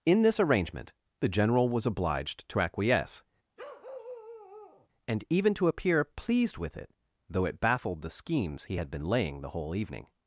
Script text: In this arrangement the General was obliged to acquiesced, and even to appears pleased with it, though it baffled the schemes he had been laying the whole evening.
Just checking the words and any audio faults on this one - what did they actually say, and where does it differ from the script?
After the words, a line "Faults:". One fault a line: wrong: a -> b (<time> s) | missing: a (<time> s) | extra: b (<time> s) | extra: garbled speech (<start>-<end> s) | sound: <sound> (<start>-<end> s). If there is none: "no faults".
In this arrangement the General was obliged to acquiesce, and even to appear pleased with it, though it baffled the schemes he had been laying the whole evening.
Faults:
wrong: acquiesced -> acquiesce (2.6 s)
sound: bark (3.6-4.9 s)
wrong: appears -> appear (5.7 s)